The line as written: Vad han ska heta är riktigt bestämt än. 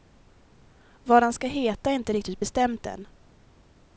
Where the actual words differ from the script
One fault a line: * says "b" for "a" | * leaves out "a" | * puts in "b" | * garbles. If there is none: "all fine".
* puts in "inte"